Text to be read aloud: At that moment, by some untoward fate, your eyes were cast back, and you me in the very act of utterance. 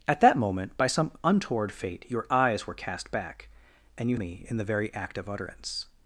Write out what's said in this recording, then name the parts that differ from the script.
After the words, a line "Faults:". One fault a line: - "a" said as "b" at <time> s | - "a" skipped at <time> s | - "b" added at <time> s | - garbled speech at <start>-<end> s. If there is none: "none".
At that moment, by some untoward fate, your eyes were cast back, and you me in the very act of utterance.
Faults:
none